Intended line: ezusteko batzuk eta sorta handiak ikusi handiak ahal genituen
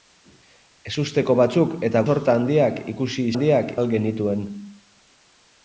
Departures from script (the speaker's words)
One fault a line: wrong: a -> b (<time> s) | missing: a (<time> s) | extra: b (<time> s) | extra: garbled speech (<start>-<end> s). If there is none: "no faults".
no faults